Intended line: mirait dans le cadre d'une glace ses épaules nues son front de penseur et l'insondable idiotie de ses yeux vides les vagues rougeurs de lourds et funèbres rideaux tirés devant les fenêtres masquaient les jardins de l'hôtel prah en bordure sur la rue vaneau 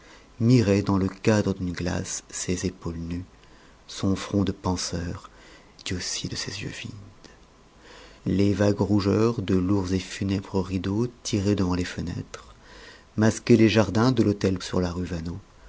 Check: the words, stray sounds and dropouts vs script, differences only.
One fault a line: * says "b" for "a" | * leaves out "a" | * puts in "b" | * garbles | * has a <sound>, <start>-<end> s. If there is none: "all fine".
* leaves out "et l'insondable"
* leaves out "prah en bordure"